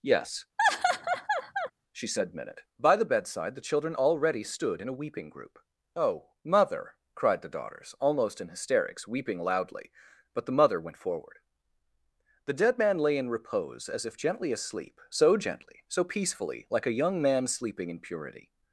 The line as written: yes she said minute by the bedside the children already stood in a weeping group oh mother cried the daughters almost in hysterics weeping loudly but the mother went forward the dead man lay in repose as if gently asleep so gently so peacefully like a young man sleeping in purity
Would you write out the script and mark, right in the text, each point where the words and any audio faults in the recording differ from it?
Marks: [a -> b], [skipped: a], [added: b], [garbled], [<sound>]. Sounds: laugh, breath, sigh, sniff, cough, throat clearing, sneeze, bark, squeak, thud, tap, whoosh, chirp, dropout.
yes [laugh] she said minute by the bedside the children already stood in a weeping group oh mother cried the daughters almost in hysterics weeping loudly but the mother went forward the dead man lay in repose as if gently asleep so gently so peacefully like a young man sleeping in purity